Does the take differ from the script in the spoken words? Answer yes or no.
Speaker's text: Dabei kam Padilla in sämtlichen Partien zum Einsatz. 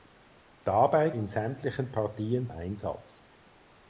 yes